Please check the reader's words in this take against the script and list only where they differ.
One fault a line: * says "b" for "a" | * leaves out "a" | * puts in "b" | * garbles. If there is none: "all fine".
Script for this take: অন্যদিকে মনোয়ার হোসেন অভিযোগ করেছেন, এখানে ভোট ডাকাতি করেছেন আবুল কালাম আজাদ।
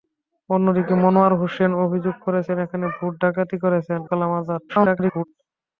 * leaves out "আবুল"
* garbles